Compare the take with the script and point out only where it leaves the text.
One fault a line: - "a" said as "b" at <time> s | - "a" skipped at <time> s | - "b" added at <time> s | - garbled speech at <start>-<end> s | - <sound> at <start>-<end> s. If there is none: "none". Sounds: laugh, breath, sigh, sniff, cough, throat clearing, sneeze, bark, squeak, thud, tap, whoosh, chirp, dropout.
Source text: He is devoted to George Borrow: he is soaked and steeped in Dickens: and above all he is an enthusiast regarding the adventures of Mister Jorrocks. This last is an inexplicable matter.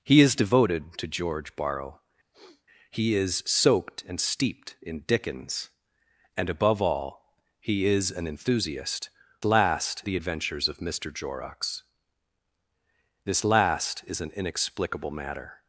- sniff at 2.3-2.6 s
- "regarding" said as "last" at 9.4 s